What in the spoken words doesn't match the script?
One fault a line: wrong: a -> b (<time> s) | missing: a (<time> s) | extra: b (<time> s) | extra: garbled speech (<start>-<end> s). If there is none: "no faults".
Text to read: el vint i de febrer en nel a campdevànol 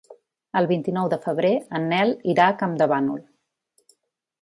extra: nou (0.9 s)
extra: irà (2.4 s)